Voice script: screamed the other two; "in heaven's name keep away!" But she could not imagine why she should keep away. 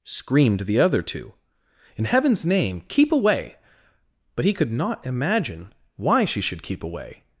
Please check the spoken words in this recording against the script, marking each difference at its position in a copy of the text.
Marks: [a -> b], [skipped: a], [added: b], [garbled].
screamed the other two; "in heaven's name keep away!" But [she -> he] could not imagine why she should keep away.